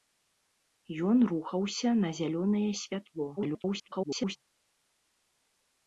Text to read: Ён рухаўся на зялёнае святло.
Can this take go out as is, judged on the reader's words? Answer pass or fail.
fail